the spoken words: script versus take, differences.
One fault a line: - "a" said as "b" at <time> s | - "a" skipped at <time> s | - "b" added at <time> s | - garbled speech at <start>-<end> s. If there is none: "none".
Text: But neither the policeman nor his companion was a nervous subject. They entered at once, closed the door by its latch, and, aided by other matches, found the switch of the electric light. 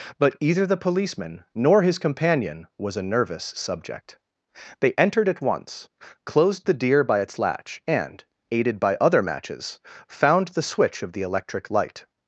- "neither" said as "either" at 0.4 s
- "door" said as "deer" at 6.7 s